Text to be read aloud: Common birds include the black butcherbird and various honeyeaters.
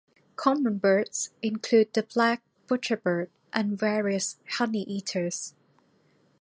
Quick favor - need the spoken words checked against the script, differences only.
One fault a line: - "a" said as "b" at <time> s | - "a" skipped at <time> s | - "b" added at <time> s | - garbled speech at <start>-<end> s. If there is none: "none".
none